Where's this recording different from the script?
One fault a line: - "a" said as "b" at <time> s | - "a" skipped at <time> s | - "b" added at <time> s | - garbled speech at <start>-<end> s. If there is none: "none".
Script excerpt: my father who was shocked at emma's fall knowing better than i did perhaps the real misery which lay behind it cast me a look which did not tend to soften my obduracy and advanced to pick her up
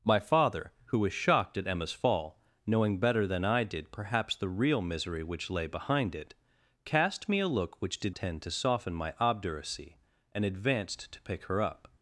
- "not" skipped at 8.2 s